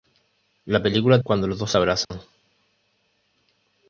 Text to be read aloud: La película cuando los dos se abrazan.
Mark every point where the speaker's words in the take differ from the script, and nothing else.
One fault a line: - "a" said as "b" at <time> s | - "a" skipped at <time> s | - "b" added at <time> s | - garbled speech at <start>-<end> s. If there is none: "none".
none